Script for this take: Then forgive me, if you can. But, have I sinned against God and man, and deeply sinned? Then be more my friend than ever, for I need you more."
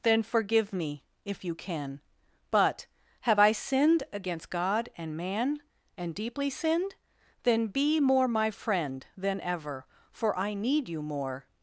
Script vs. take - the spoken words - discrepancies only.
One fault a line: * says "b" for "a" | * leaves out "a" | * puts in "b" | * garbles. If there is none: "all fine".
all fine